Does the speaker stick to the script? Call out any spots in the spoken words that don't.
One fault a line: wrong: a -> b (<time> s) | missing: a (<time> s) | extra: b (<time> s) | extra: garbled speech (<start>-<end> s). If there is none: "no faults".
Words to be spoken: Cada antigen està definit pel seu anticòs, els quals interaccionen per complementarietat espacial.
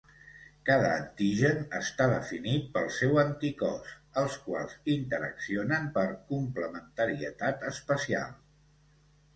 no faults